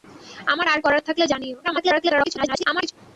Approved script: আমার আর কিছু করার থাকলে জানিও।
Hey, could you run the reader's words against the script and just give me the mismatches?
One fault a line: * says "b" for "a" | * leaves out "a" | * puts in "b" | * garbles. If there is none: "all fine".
* leaves out "কিছু"
* garbles